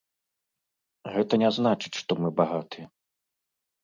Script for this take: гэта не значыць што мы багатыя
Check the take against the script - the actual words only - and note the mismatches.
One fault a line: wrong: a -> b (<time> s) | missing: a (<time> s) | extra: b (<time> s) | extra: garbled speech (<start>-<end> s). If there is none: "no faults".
no faults